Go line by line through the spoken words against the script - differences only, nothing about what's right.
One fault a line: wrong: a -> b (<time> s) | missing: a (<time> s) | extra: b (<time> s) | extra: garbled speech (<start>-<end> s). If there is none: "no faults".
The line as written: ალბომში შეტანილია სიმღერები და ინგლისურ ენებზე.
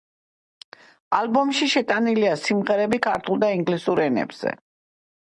extra: ქართულ (3.1 s)